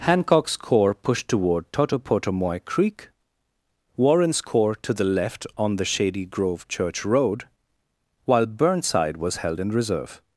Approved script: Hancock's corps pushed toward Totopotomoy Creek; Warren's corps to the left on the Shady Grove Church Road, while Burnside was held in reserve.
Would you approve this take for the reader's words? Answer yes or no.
yes